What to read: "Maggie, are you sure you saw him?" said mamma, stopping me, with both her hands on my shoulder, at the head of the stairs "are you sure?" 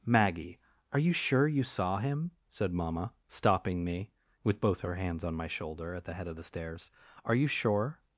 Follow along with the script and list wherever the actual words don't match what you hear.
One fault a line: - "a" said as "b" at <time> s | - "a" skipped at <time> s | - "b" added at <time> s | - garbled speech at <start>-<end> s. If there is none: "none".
none